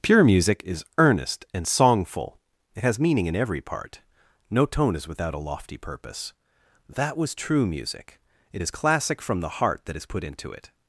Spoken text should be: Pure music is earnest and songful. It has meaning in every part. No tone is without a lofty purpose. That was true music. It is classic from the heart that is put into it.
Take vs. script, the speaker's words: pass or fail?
pass